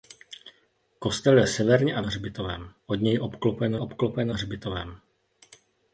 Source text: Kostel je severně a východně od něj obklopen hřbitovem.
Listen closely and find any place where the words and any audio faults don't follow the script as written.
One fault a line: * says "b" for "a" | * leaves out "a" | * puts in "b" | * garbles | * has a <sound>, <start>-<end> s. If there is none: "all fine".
* says "hřbitovem" for "východně"
* puts in "obklopen"